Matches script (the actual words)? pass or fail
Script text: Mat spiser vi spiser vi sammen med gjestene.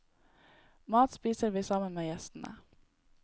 fail